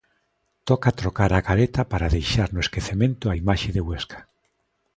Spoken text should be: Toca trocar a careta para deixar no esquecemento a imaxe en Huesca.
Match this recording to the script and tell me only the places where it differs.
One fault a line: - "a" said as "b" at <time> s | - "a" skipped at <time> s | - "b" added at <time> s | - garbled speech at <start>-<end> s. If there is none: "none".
- "en" said as "de" at 3.7 s